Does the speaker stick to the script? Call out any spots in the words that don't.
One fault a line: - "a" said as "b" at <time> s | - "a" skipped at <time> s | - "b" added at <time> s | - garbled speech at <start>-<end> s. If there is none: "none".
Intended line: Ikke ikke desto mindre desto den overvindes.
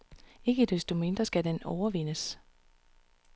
- "ikke" skipped at 0.7 s
- "desto" said as "skal" at 1.2 s